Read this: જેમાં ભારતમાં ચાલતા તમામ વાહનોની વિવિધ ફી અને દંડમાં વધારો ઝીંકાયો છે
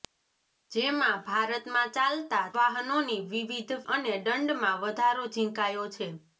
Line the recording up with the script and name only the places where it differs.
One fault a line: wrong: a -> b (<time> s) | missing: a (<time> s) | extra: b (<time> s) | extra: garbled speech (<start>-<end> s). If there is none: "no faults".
missing: તમામ (2.4 s)
missing: ફી (3.7 s)